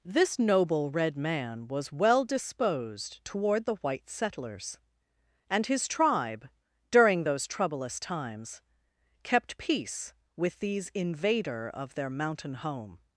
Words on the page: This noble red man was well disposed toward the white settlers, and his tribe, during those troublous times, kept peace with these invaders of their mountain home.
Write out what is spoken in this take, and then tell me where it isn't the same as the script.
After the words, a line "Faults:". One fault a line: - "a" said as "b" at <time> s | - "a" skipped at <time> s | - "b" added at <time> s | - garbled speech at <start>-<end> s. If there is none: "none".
This noble red man was well disposed toward the white settlers, and his tribe, during those troublous times, kept peace with these invader of their mountain home.
Faults:
- "invaders" said as "invader" at 10.9 s